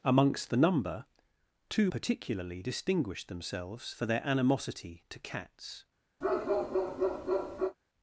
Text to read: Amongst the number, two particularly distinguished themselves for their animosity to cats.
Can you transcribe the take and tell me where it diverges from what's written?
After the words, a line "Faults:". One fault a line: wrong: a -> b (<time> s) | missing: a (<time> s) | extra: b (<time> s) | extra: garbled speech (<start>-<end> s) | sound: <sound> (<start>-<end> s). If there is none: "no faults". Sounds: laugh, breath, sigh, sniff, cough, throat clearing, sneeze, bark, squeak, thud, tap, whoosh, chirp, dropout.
Amongst the number, two particularly distinguished themselves for their animosity to cats.
Faults:
sound: bark (6.2-7.8 s)